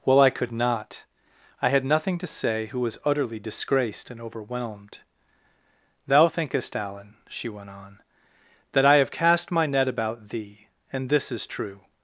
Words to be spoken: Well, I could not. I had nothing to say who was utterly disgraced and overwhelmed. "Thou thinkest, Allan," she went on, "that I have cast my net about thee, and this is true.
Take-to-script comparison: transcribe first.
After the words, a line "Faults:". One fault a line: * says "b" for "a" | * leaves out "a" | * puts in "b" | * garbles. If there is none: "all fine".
Well, I could not. I had nothing to say who was utterly disgraced and overwhelmed. "Thou thinkest, Allan," she went on, "that I have cast my net about thee, and this is true.
Faults:
all fine